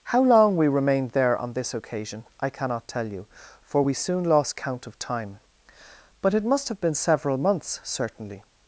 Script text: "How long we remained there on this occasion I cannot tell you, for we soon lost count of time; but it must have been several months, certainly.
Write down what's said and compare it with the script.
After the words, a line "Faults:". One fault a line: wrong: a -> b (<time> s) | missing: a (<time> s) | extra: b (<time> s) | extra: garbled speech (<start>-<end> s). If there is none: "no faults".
"How long we remained there on this occasion I cannot tell you, for we soon lost count of time; but it must have been several months, certainly.
Faults:
no faults